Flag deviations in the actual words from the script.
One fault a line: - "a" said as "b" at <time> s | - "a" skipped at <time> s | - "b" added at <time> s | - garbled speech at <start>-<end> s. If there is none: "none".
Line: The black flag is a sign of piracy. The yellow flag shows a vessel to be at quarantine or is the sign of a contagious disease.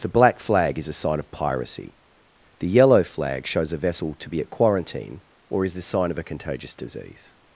none